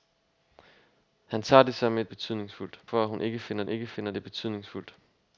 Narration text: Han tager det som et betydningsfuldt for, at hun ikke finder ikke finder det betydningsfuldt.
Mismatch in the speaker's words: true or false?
false